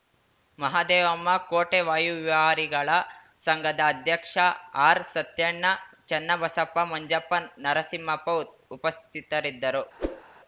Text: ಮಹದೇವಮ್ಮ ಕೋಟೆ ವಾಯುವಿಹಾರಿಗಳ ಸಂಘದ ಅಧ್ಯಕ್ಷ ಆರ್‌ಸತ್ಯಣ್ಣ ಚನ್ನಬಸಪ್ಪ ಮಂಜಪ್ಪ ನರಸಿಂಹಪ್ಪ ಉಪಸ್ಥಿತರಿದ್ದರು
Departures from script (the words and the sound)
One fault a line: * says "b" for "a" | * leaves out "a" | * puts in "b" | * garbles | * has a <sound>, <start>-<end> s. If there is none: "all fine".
* has a whoosh, 10.0-10.2 s